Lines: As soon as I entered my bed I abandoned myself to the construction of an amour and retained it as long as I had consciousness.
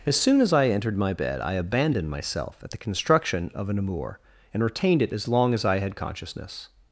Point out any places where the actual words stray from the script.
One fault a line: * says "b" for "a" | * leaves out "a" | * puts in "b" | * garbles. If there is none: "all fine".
* says "at" for "to"